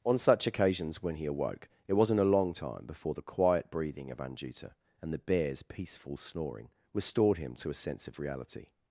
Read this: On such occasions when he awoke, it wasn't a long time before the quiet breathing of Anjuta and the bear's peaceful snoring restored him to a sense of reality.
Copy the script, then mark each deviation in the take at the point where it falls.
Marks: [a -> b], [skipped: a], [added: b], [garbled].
On such occasions when he awoke, it wasn't a long time before the quiet breathing of Anjuta and the bear's peaceful snoring restored him to a sense of reality.